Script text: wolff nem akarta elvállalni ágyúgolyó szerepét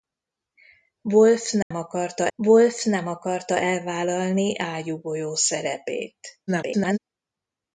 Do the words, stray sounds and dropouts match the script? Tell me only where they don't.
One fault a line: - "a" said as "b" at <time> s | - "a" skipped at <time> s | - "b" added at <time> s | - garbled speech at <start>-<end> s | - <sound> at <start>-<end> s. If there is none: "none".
- dropout at 1.6-1.7 s
- "wolff nem akarta" added at 2.3 s
- garbled speech at 6.5-7.0 s